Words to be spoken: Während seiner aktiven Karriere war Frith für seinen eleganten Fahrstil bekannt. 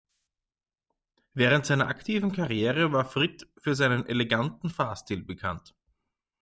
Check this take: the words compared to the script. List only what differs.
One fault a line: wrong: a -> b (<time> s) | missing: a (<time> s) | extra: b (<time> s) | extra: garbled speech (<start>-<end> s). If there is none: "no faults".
no faults